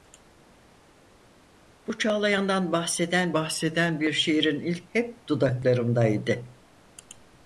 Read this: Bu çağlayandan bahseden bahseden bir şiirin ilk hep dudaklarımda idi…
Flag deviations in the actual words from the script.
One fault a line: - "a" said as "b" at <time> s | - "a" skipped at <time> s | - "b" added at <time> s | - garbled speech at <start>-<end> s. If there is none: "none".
none